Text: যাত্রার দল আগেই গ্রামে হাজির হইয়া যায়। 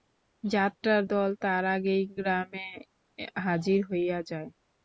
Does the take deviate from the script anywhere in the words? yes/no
yes